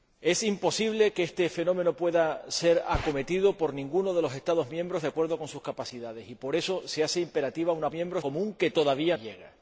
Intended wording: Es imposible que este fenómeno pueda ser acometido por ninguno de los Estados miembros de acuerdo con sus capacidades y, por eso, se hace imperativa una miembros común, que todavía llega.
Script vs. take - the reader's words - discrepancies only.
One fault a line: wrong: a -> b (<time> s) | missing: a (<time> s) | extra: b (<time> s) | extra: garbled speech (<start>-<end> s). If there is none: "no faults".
no faults